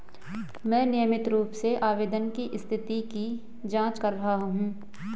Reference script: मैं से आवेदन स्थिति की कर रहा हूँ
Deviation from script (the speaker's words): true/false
true